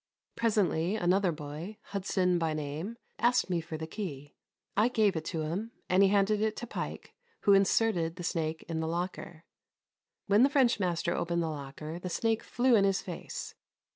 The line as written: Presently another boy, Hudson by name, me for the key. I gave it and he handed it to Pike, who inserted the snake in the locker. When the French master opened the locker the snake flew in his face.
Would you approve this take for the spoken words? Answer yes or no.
no